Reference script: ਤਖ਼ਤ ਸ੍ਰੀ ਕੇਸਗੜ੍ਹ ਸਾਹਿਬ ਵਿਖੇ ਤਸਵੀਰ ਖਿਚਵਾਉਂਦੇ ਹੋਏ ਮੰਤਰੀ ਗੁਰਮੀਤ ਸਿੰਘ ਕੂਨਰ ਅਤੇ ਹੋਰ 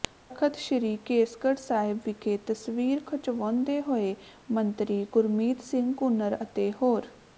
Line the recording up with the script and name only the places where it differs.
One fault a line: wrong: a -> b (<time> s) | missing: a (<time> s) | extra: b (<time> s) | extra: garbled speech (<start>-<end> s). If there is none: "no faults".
no faults